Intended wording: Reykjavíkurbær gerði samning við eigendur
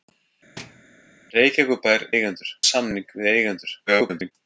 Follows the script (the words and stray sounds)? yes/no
no